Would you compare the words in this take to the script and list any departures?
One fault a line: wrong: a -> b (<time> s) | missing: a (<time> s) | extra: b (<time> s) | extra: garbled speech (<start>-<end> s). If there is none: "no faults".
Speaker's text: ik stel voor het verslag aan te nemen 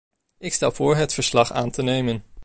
no faults